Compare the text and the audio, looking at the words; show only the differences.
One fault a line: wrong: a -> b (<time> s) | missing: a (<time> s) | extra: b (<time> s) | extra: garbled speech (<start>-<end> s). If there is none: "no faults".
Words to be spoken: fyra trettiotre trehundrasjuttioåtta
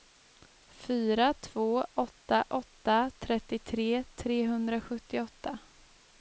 extra: två åtta åtta (1.3 s)